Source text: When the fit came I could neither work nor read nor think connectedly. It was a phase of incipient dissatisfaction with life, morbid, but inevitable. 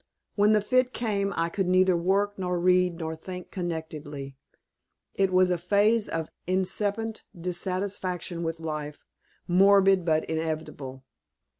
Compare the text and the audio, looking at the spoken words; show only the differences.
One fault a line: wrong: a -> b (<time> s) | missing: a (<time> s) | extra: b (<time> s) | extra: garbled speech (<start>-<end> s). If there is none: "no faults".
no faults